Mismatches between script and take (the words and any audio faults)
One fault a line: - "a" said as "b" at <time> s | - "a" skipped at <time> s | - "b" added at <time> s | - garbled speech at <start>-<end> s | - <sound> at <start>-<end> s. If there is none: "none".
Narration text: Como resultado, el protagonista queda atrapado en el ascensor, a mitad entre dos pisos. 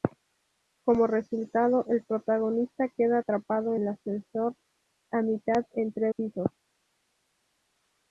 - "en" skipped at 3.8 s
- "dos" skipped at 6.1 s